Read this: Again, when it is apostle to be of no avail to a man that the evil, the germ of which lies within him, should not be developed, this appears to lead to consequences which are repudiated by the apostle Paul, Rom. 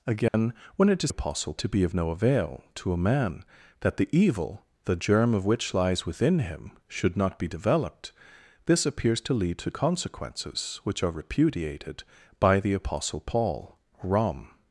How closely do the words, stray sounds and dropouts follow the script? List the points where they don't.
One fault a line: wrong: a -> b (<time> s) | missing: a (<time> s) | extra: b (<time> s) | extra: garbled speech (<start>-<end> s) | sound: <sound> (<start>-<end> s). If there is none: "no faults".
sound: dropout (0.3-0.3 s)